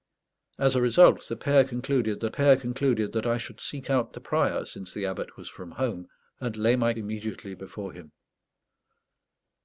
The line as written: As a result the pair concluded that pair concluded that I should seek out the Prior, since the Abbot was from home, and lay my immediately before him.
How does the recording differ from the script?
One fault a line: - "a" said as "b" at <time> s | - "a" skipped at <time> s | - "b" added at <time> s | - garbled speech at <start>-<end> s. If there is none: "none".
none